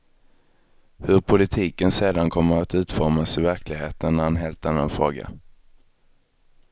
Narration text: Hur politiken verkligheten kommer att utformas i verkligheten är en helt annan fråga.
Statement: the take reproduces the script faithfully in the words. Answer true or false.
false